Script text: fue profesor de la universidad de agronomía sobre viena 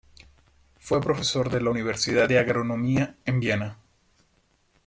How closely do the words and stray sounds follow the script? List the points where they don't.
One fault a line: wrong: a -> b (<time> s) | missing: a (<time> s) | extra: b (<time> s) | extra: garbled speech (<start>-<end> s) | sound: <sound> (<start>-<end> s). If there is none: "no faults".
wrong: sobre -> en (3.2 s)